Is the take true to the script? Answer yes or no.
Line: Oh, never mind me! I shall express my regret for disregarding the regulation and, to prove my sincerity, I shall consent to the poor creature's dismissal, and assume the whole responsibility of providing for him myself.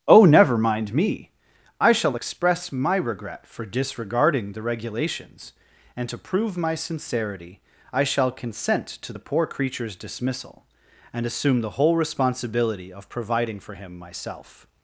no